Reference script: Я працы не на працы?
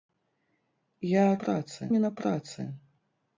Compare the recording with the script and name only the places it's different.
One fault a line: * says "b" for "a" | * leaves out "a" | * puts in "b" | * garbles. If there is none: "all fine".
all fine